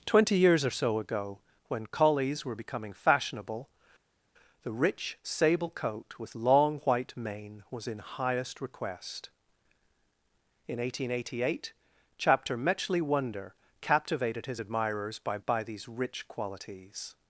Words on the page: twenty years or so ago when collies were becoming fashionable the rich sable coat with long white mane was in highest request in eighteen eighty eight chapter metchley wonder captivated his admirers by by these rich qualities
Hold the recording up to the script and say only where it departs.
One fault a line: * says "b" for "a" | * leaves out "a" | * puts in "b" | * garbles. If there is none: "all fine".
all fine